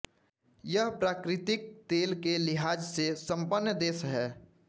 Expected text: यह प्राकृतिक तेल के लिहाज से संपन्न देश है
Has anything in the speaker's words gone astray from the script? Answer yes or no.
no